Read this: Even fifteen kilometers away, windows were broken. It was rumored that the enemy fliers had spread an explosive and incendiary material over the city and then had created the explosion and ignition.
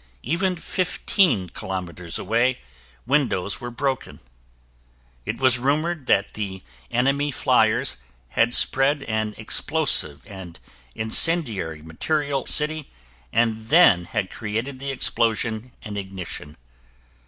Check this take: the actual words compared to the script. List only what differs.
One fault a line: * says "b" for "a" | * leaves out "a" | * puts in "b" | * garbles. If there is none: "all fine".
* leaves out "over the"